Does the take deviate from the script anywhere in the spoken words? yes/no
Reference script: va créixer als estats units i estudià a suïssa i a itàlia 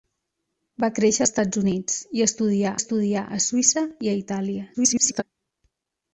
yes